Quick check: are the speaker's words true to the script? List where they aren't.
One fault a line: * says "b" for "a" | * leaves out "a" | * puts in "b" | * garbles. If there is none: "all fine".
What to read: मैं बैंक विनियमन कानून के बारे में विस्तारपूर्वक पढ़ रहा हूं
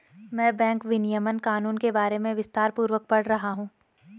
all fine